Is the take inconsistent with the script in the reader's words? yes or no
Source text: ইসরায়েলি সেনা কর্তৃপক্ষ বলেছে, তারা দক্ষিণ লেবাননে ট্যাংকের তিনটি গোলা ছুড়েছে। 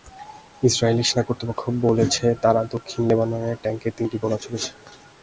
no